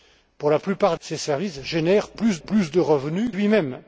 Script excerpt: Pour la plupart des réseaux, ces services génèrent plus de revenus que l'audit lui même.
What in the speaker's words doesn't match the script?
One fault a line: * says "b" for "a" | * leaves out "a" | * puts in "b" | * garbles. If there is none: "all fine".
* leaves out "des réseaux"
* puts in "plus"
* leaves out "que l'audit"